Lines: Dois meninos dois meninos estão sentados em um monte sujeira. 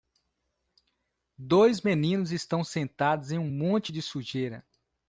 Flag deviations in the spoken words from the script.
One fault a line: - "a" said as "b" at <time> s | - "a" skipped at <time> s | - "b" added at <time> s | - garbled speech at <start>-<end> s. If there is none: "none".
- "dois meninos" skipped at 2.3 s
- "de" added at 3.9 s